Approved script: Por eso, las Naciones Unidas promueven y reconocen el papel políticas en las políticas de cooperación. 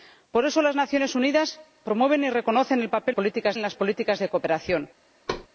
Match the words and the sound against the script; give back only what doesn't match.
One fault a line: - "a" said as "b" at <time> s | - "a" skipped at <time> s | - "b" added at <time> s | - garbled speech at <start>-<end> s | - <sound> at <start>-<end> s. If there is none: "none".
- thud at 5.3-5.5 s